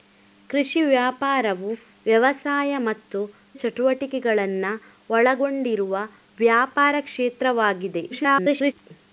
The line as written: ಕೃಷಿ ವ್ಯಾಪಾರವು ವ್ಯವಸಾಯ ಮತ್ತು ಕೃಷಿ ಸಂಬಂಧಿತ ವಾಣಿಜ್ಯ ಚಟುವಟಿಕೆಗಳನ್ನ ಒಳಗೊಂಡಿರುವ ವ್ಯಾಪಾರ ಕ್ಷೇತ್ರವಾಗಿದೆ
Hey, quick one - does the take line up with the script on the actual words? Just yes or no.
no